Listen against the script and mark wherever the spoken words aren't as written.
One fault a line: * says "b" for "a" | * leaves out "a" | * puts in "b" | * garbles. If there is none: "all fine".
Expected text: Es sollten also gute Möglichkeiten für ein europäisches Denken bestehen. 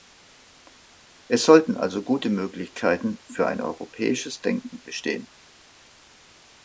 all fine